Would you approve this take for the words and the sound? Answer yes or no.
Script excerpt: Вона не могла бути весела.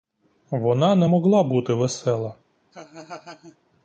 no